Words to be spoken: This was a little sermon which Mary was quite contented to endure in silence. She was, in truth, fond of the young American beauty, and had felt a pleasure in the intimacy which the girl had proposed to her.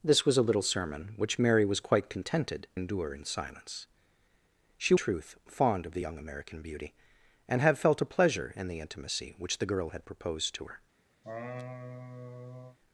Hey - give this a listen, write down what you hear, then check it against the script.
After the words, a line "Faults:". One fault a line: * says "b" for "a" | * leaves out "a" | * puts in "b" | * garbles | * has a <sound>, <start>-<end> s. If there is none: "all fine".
This was a little sermon which Mary was quite contented endure in silence. She truth, fond of the young American beauty, and had felt a pleasure in the intimacy which the girl had proposed to her.
Faults:
* leaves out "to"
* leaves out "was in"
* has a laugh, 11.2-12.8 s